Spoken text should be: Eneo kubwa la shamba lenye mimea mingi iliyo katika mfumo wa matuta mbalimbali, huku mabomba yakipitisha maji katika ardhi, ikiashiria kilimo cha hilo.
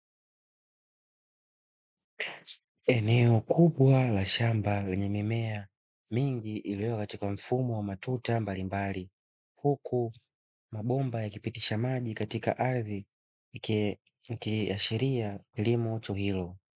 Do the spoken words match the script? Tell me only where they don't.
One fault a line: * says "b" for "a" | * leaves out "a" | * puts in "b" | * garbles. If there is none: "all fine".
all fine